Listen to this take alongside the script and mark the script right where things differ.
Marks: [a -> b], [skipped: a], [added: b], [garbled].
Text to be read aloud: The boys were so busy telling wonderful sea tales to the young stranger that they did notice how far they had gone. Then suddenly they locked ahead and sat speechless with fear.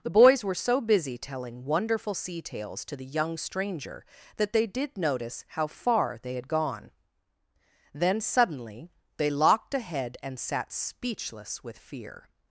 The boys were so busy telling wonderful sea tales to the young stranger that they did notice how far they had gone. Then suddenly they locked ahead and sat speechless with fear.